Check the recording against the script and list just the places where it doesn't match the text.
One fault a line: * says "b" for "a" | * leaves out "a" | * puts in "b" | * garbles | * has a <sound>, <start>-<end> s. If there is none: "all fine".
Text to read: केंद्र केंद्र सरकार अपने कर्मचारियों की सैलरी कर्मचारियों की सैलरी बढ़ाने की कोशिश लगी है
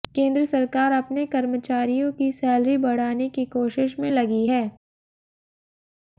* leaves out "केंद्र"
* leaves out "कर्मचारियों की सैलरी"
* puts in "में"